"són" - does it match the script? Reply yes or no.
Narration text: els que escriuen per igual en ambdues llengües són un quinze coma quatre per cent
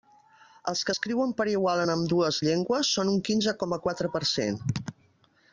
yes